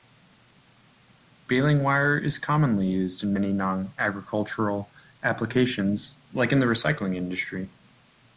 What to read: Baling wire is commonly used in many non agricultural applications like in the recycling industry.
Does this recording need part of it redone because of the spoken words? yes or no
no